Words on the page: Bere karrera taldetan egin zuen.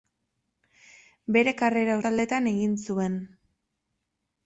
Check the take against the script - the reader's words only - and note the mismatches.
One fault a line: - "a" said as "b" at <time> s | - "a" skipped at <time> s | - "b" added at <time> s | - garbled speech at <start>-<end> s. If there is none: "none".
none